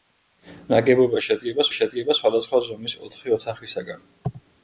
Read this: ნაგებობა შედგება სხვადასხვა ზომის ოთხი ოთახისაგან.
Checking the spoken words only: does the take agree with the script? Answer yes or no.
no